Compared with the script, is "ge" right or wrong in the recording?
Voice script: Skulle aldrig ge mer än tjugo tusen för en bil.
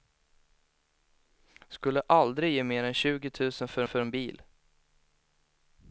right